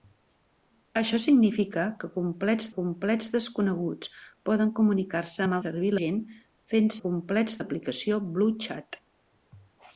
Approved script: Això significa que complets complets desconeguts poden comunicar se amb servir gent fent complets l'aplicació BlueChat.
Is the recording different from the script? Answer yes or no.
no